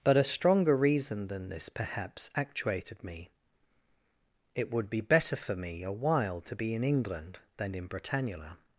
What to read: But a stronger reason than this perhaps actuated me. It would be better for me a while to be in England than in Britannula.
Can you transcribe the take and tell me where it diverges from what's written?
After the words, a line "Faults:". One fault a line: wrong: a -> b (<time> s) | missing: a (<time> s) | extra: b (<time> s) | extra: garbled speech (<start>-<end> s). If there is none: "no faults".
But a stronger reason than this perhaps actuated me. It would be better for me a while to be in England than in Britannula.
Faults:
no faults